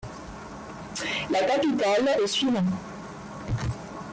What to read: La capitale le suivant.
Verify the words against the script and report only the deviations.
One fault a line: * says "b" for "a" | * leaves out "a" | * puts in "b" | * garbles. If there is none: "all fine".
all fine